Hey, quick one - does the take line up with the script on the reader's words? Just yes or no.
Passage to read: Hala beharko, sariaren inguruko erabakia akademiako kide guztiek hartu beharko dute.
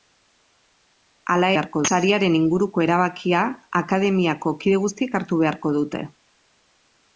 yes